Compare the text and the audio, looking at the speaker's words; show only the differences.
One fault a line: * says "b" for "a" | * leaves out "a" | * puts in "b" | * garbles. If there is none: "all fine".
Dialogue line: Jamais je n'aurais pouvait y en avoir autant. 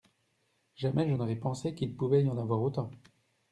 * puts in "pensé qu'il"